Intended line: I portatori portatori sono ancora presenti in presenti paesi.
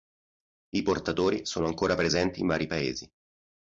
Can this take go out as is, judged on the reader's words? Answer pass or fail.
fail